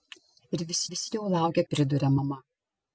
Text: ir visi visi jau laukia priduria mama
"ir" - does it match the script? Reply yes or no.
yes